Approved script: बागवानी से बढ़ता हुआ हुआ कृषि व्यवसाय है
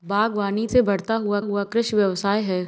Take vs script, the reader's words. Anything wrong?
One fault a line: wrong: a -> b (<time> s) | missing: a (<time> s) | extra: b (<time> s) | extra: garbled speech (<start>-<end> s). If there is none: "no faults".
no faults